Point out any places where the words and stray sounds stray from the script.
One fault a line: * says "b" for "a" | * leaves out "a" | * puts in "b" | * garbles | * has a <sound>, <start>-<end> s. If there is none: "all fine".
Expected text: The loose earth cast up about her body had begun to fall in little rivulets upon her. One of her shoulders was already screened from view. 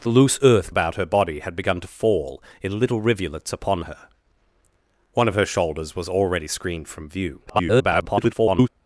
* leaves out "cast up"
* garbles